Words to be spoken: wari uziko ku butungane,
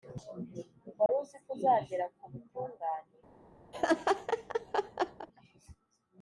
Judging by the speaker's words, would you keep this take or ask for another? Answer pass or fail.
fail